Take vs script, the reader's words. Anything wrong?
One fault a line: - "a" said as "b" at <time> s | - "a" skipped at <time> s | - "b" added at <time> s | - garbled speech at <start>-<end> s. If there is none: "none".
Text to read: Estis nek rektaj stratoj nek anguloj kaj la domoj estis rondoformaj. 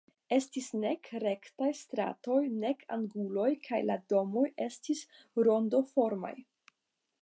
none